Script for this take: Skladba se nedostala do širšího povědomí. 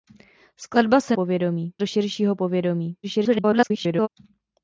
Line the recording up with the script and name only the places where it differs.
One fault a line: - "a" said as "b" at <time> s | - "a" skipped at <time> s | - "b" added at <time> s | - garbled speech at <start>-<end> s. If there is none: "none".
- "nedostala" said as "povědomí" at 1.1 s
- garbled speech at 3.0-4.1 s